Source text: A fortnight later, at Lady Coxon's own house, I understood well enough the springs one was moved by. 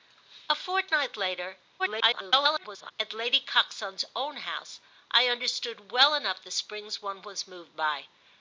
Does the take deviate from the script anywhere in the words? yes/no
yes